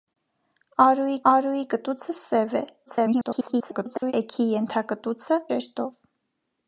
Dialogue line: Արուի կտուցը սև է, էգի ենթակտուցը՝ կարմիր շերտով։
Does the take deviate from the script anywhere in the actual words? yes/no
yes